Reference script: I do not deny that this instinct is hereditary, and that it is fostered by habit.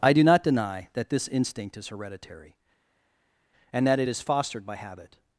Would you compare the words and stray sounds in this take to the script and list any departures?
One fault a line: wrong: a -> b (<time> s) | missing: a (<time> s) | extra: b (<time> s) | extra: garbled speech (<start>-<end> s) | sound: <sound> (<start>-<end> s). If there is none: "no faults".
no faults